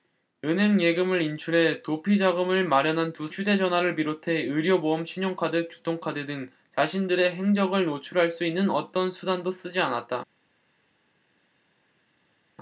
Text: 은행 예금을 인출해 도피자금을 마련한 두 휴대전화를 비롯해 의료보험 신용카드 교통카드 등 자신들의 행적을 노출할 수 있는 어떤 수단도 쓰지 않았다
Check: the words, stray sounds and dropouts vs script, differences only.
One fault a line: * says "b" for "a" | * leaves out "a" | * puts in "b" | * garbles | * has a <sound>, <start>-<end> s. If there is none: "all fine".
all fine